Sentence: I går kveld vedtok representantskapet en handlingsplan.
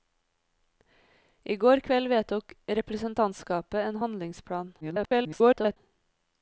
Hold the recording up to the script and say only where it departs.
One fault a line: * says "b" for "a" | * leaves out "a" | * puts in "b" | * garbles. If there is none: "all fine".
* garbles